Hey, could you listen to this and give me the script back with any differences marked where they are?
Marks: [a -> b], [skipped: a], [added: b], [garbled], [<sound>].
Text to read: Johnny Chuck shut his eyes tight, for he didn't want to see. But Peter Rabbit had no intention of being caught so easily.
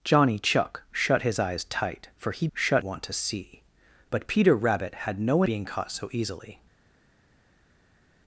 Johnny Chuck shut his eyes tight, for he [didn't -> shut] want to see. But Peter Rabbit had no [skipped: intention of] being caught so easily.